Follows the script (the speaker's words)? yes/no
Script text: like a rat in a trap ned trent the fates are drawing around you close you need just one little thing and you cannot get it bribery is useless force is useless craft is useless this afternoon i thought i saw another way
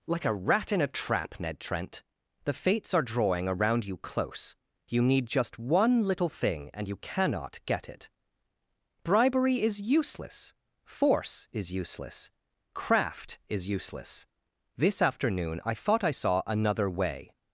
yes